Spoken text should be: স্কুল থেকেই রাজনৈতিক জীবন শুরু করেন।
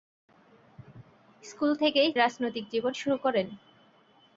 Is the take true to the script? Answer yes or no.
yes